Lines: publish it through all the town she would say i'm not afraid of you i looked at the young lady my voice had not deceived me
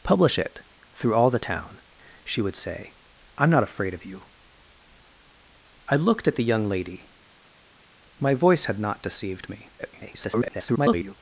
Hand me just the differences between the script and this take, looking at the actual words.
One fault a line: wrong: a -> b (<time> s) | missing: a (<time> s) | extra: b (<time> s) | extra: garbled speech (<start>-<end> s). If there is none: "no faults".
extra: garbled speech (9.8-11.2 s)